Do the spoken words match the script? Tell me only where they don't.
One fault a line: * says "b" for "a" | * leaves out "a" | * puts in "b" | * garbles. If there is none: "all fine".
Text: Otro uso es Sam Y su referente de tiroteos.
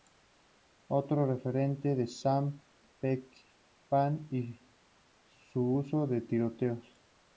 * says "referente" for "uso"
* puts in "Peckinpah"
* says "uso" for "referente"